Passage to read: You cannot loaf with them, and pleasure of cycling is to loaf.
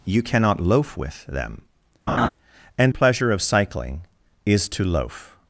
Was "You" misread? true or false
false